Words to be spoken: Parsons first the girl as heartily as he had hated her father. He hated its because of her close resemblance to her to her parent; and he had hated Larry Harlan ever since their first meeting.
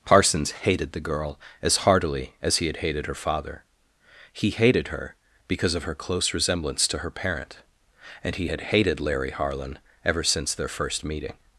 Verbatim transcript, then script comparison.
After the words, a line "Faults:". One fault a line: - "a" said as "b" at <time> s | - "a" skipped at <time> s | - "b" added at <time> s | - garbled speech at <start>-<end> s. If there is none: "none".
Parsons hated the girl as heartily as he had hated her father. He hated her because of her close resemblance to her parent; and he had hated Larry Harlan ever since their first meeting.
Faults:
- "first" said as "hated" at 0.5 s
- "its" said as "her" at 4.9 s
- "to her" skipped at 7.1 s